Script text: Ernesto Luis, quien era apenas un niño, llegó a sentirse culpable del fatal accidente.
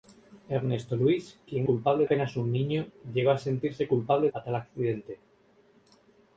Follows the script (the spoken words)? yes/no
no